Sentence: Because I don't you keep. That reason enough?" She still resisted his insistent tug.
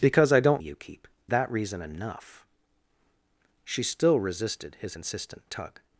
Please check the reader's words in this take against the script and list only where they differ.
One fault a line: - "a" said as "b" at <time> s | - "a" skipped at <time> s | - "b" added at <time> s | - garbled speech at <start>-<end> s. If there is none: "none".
none